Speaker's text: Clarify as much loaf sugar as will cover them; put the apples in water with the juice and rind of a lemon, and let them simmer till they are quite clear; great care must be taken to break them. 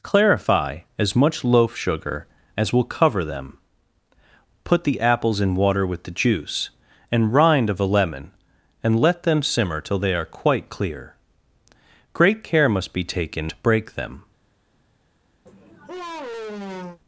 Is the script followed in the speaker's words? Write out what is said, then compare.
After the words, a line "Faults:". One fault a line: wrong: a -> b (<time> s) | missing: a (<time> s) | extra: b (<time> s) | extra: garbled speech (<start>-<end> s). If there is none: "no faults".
Clarify as much loaf sugar as will cover them; put the apples in water with the juice and rind of a lemon, and let them simmer till they are quite clear; great care must be taken to break them.
Faults:
no faults